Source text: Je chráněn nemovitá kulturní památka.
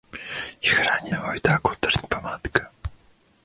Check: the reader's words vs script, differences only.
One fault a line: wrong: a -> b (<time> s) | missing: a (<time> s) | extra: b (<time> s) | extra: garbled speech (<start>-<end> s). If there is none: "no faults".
no faults